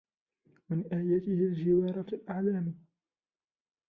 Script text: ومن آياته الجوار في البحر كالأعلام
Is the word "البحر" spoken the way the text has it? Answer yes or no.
no